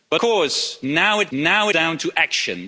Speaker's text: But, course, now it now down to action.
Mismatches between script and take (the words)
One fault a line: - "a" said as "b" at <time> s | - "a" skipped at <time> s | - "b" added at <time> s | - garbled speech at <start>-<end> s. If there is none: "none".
none